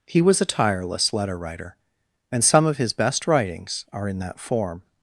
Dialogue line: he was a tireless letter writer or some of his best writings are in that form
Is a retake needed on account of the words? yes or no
yes